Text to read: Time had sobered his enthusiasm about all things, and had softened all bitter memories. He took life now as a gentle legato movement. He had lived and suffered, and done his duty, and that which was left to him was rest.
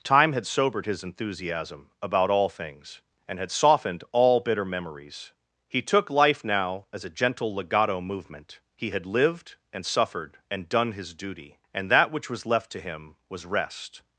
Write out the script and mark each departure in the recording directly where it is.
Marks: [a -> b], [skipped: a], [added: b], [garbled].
Time had sobered his enthusiasm about all things, and had softened all bitter memories. He took life now as a gentle legato movement. He had lived and suffered, and done his duty, and that which was left to him was rest.